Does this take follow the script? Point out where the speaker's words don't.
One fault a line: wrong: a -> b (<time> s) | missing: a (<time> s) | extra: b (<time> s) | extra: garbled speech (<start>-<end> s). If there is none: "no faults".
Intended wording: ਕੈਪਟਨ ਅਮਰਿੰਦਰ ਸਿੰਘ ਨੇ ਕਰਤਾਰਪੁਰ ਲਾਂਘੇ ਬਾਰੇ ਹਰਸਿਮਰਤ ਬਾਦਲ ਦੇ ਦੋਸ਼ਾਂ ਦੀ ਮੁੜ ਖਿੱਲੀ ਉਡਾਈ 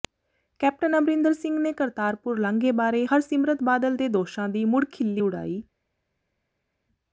no faults